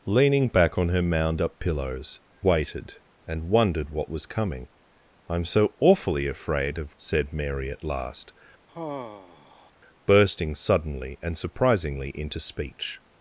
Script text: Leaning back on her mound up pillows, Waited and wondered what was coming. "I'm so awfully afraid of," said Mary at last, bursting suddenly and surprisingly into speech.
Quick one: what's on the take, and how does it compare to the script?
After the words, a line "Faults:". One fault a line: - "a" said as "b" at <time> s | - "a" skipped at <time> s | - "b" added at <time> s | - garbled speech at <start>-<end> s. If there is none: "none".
Leaning back on her mound up pillows, Waited and wondered what was coming. "I'm so awfully afraid of," said Mary at last, bursting suddenly and surprisingly into speech.
Faults:
none